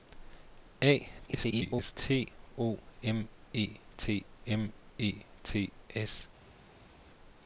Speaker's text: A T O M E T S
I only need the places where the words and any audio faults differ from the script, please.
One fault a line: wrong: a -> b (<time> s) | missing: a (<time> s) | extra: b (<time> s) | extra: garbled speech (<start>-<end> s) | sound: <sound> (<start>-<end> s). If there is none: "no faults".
extra: garbled speech (1.3-1.9 s)
extra: M E T (4.5 s)